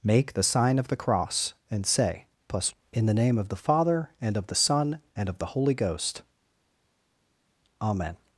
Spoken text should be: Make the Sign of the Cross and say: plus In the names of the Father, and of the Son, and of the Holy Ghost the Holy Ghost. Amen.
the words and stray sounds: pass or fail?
fail